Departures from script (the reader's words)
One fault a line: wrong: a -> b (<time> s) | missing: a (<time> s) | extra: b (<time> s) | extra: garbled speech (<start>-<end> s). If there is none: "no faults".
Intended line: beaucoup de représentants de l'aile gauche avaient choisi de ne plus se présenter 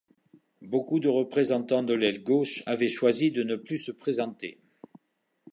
no faults